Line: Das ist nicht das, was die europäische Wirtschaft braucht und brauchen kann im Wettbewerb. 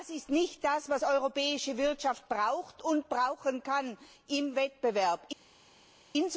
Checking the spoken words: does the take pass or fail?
pass